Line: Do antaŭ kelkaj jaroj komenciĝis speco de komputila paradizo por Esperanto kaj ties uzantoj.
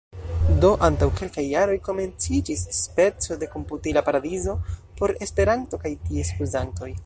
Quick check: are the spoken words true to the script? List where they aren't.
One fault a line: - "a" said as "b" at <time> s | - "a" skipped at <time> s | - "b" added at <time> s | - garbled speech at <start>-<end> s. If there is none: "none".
none